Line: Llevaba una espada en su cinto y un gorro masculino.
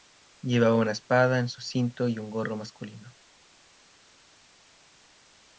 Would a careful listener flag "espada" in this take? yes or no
no